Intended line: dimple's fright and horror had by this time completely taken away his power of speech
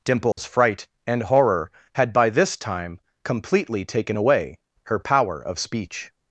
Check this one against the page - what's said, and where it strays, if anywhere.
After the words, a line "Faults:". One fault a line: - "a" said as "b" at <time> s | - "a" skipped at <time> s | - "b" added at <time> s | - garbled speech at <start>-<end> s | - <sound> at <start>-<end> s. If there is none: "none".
dimple's fright and horror had by this time completely taken away her power of speech
Faults:
- dropout at 0.3-0.4 s
- "his" said as "her" at 4.8 s